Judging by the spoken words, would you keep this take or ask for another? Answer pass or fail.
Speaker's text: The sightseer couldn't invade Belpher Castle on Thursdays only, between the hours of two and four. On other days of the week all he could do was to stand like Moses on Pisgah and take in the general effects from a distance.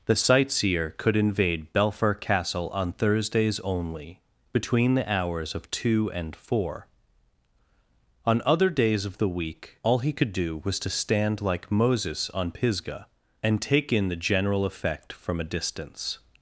fail